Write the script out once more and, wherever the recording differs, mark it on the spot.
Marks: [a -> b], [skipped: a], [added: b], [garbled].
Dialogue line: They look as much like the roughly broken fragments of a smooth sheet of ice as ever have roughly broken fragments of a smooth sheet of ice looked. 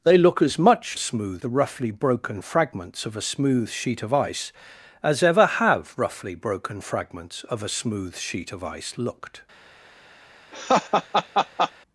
They look as much [like -> smooth] the roughly broken fragments of a smooth sheet of ice as ever have roughly broken fragments of a smooth sheet of ice looked.